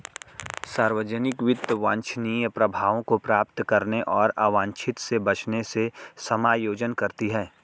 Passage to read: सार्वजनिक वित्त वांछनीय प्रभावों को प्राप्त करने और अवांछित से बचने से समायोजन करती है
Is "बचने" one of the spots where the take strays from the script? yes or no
no